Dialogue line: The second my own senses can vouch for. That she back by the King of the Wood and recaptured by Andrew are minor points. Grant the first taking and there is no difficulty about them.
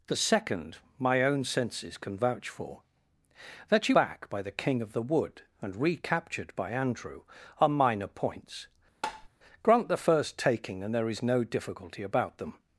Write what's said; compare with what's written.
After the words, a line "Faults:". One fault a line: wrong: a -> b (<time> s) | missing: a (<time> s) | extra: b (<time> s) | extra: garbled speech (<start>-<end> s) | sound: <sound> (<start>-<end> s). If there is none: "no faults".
The second my own senses can vouch for. That she back by the King of the Wood and recaptured by Andrew are minor points. Grant the first taking and there is no difficulty about them.
Faults:
sound: tap (9.0-9.3 s)